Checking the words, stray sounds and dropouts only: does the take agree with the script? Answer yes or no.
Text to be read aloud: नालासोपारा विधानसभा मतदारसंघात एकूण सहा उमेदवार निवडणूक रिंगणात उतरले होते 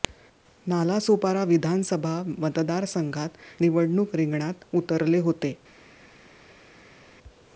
no